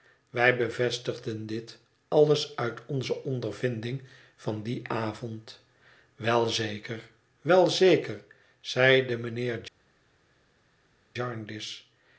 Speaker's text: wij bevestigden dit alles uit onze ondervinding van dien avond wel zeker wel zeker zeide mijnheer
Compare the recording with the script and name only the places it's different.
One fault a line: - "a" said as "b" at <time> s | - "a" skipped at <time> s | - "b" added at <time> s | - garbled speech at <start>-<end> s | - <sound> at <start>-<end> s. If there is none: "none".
none